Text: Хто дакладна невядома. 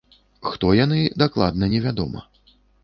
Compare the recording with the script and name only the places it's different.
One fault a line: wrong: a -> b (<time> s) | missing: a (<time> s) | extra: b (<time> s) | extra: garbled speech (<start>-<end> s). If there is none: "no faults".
extra: яны (0.8 s)